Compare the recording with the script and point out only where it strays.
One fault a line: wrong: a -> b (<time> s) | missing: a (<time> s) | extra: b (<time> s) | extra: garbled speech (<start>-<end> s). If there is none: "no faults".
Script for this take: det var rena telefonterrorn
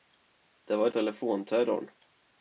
missing: rena (0.9 s)